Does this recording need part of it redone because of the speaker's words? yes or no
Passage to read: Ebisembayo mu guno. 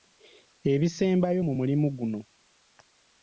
yes